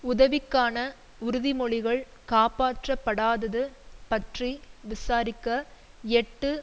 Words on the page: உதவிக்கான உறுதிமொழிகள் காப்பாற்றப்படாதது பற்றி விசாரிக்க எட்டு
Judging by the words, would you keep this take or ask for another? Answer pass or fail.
pass